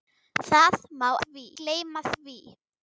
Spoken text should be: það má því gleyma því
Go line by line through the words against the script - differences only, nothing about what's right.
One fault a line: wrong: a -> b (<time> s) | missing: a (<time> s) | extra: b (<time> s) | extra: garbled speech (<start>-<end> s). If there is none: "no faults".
no faults